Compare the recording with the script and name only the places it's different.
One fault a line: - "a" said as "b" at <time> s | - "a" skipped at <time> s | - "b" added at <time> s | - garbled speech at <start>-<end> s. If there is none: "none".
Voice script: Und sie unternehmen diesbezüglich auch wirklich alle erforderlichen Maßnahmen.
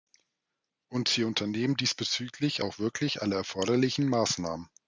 none